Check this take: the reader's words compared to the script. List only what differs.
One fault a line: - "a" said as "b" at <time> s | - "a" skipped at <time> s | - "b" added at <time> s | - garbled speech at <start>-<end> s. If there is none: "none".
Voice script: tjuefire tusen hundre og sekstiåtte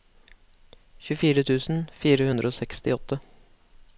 - "fire" added at 2.0 s